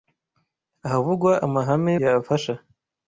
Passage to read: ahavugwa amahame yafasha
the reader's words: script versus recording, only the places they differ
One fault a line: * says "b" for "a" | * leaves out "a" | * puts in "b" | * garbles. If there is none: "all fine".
all fine